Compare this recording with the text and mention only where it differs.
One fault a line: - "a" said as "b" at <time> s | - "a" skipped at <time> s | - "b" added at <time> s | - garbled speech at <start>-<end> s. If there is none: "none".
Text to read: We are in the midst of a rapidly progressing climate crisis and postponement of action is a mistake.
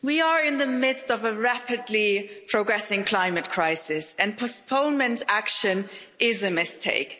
- "of" skipped at 5.2 s